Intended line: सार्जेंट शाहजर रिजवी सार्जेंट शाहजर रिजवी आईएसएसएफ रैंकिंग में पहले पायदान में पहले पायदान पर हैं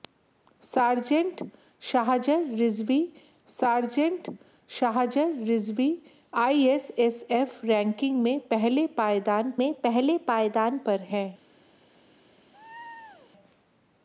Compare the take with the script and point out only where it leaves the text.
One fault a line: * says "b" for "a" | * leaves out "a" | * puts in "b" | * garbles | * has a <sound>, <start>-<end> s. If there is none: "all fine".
* has a laugh, 12.5-13.3 s